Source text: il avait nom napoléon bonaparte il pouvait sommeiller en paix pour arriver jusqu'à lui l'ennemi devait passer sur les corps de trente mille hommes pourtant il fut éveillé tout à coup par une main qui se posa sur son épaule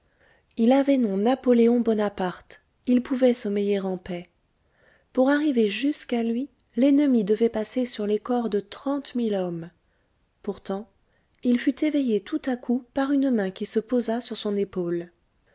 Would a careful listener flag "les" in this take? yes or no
no